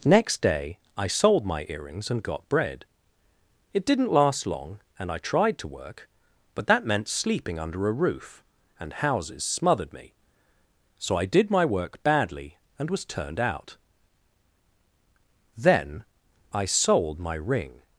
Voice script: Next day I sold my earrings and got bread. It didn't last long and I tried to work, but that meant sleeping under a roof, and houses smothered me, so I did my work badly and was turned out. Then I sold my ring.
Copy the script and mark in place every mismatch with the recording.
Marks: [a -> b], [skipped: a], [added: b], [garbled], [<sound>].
Next day I sold my earrings and got bread. It didn't last long and I tried to work, but that meant sleeping under a roof, and houses smothered me, so I did my work badly and was turned out. Then I sold my ring.